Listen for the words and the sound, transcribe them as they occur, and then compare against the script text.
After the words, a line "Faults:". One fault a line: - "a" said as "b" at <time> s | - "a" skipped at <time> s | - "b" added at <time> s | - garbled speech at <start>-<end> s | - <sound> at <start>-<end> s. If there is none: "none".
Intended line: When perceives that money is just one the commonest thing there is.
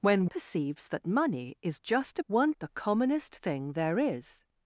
When perceives that money is just one the commonest thing there is.
Faults:
none